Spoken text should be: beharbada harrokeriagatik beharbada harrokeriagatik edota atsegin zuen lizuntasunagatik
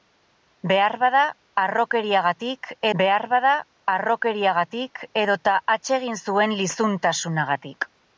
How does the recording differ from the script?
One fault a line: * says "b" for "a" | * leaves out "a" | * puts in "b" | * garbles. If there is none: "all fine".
all fine